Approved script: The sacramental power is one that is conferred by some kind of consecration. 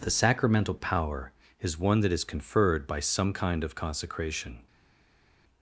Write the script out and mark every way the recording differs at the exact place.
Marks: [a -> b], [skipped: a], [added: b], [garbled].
The sacramental power is one that is conferred by some kind of consecration.